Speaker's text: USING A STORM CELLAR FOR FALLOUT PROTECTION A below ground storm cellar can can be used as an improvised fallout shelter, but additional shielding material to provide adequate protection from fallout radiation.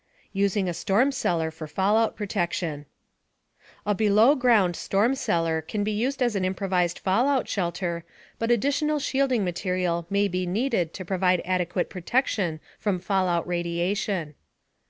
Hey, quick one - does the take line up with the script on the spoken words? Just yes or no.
no